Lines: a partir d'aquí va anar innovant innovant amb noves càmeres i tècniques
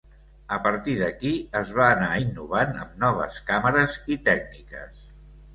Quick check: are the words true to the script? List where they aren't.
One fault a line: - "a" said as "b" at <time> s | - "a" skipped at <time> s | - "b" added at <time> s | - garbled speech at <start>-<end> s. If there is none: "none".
- "es" added at 1.6 s
- "innovant" skipped at 2.7 s